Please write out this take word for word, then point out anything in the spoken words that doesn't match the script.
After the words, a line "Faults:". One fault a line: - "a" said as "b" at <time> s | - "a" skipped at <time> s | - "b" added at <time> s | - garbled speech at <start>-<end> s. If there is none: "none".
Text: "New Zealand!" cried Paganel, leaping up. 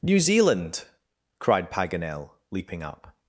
"New Zealand!" cried Paganel, leaping up.
Faults:
none